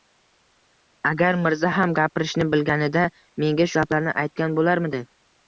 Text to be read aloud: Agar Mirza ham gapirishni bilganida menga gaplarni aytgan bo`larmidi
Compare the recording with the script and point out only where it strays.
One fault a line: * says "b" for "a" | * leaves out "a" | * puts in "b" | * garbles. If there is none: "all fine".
all fine